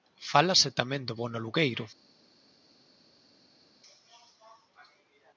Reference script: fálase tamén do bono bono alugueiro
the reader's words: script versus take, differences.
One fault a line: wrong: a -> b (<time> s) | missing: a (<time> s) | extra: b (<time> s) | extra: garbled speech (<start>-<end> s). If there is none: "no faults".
missing: bono (1.4 s)